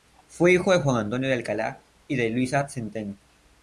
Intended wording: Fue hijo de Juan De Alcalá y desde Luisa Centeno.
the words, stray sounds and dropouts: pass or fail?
fail